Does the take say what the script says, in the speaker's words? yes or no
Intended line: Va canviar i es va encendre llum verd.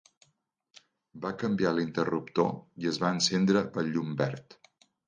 no